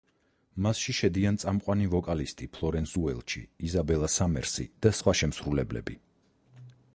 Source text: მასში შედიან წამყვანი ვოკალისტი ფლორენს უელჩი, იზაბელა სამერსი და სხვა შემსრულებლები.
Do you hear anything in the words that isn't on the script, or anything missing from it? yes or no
no